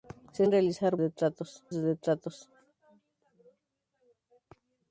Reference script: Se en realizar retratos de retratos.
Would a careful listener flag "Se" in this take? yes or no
no